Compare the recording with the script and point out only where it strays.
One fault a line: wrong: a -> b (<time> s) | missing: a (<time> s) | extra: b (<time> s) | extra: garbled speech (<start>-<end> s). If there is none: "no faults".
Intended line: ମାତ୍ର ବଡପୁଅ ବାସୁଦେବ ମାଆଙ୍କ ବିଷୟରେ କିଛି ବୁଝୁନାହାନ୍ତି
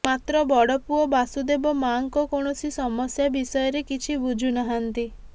extra: କୌଣସି ସମସ୍ୟା (2.3 s)